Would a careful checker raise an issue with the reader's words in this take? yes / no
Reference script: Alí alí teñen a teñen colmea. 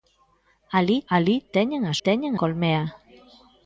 no